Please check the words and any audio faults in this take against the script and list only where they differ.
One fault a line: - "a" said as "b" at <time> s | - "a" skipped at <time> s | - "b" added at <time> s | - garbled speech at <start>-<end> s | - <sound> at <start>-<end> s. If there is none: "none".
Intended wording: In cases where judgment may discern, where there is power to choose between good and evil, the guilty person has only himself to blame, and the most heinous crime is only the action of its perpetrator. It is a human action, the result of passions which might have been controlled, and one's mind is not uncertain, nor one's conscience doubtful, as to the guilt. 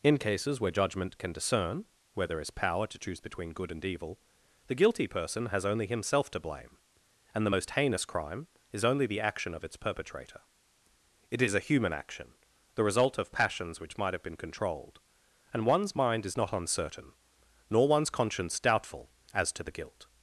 - "may" said as "can" at 1.2 s